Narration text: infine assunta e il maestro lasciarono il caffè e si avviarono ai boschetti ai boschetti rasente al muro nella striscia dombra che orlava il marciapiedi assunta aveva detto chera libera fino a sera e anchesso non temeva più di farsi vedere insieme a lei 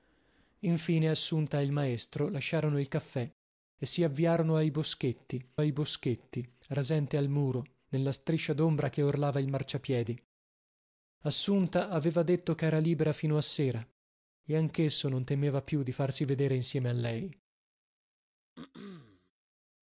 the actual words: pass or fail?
pass